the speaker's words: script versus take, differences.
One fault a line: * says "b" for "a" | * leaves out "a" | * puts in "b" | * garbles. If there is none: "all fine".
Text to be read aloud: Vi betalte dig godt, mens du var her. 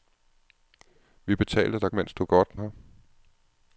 * leaves out "godt"
* says "godt" for "var"